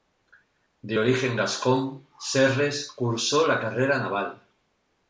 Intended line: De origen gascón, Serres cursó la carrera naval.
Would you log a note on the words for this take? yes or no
no